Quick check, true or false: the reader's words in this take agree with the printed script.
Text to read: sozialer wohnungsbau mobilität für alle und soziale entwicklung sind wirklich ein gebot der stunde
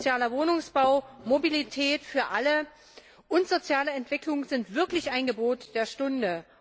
true